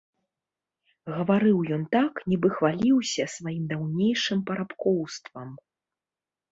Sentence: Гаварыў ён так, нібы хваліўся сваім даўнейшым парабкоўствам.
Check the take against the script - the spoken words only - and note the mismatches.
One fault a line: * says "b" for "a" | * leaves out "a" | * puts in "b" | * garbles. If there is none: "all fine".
all fine